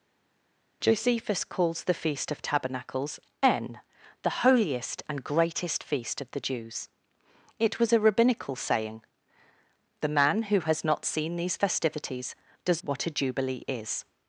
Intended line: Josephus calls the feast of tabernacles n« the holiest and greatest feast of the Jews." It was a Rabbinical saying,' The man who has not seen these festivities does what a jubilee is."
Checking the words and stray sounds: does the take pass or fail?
pass